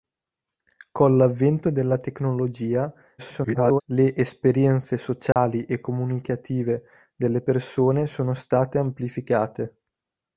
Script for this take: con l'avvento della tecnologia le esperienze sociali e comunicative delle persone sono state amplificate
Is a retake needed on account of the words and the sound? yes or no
yes